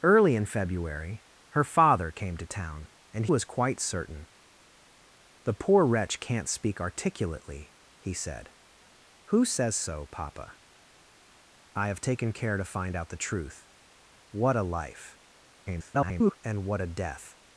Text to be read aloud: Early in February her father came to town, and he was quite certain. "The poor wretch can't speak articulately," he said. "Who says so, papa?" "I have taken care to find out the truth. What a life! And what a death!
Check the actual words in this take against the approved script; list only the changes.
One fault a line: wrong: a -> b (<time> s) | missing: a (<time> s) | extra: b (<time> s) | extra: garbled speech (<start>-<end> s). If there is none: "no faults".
missing: he (3.2 s)
extra: garbled speech (15.7-16.4 s)